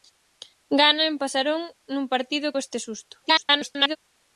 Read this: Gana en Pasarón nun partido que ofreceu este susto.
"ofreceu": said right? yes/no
no